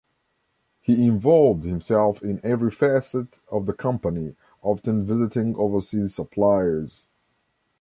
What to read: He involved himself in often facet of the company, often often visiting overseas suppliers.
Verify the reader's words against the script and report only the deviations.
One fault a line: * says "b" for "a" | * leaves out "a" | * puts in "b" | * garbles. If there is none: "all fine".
* says "every" for "often"
* leaves out "often"